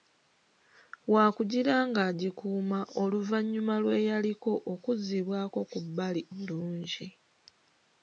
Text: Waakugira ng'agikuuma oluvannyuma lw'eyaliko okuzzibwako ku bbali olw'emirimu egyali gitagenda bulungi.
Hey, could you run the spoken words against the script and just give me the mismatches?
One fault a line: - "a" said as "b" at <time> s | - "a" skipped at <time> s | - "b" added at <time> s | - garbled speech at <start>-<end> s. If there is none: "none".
- "olw'emirimu egyali gitagenda" skipped at 6.2 s